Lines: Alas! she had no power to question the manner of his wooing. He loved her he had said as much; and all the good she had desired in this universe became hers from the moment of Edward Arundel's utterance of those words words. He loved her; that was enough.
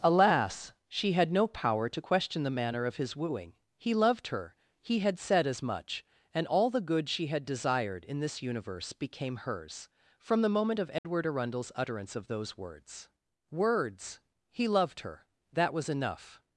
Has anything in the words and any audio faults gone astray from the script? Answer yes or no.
yes